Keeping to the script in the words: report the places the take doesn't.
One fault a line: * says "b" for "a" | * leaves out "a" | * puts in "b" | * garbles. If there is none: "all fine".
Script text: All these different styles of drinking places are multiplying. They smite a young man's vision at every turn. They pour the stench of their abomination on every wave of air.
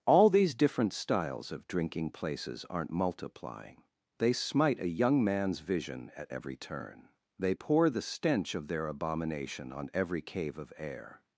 * says "aren't" for "are"
* says "cave" for "wave"